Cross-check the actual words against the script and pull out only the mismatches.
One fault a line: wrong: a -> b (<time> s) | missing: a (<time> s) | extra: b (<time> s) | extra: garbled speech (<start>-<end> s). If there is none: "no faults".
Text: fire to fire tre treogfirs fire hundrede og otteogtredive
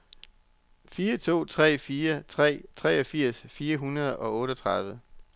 no faults